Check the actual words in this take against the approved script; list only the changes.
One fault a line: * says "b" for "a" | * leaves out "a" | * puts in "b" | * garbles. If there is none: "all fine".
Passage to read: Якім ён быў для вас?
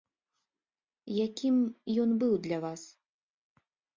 all fine